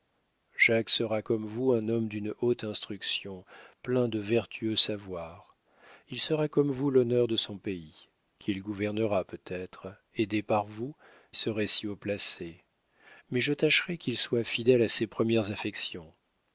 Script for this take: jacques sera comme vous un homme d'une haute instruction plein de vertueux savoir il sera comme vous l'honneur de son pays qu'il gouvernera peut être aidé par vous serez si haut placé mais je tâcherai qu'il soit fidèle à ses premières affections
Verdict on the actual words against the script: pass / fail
pass